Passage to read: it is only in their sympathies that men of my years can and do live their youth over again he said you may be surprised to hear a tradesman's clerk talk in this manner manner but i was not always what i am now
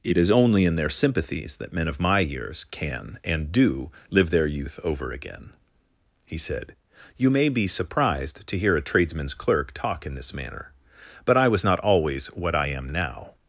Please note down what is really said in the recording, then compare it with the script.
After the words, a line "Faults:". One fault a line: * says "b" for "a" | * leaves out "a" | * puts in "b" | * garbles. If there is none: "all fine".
it is only in their sympathies that men of my years can and do live their youth over again he said you may be surprised to hear a tradesman's clerk talk in this manner but i was not always what i am now
Faults:
* leaves out "manner"